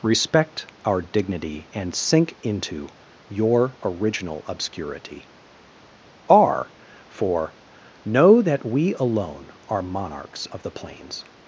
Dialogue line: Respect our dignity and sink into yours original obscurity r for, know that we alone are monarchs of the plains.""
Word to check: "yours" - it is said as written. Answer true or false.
false